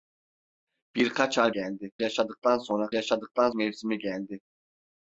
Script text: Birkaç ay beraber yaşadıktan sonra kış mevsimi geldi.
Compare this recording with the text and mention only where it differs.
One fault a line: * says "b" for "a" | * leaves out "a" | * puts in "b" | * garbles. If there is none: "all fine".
* says "geldi" for "beraber"
* says "yaşadıktan" for "kış"